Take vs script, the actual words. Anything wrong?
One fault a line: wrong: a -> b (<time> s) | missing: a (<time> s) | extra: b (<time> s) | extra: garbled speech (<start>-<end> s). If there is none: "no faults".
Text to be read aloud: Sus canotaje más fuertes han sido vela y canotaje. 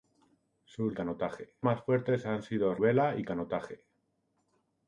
no faults